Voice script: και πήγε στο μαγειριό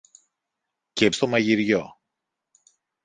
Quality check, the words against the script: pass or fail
fail